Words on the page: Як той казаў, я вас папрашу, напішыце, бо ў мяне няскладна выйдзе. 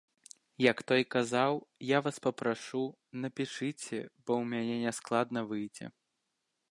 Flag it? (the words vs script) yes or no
no